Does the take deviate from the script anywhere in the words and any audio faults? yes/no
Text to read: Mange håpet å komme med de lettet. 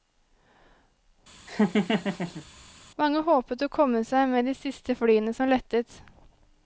yes